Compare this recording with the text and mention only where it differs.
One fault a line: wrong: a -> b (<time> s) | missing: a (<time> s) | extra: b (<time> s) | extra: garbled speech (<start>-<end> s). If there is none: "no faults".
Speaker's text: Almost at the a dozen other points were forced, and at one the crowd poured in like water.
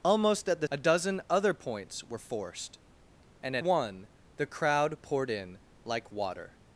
no faults